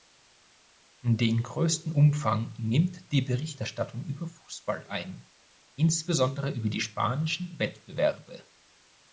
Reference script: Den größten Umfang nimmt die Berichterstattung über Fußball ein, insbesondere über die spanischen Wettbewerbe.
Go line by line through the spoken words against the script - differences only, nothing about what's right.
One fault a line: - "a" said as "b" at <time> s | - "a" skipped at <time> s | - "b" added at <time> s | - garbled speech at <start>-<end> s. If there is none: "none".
none